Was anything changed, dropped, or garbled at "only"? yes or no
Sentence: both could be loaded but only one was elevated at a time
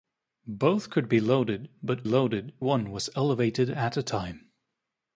yes